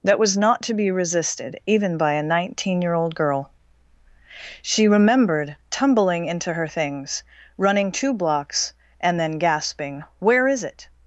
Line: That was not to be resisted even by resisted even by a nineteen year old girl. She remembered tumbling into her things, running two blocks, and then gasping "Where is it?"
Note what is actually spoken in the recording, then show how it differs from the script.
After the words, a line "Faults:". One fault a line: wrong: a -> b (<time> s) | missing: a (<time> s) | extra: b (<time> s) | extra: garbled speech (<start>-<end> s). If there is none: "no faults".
That was not to be resisted even by a nineteen year old girl. She remembered tumbling into her things, running two blocks, and then gasping "Where is it?"
Faults:
missing: resisted even by (2.1 s)